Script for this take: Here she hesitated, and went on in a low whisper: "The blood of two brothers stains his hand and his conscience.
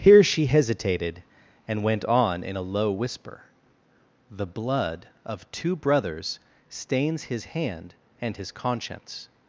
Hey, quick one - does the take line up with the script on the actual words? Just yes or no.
yes